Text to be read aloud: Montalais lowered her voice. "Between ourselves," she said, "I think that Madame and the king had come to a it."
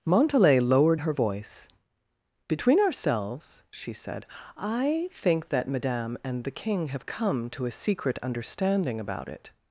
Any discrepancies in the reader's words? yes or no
yes